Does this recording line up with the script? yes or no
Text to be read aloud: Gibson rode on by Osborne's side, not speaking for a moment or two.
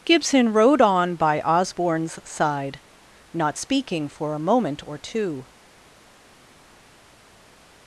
yes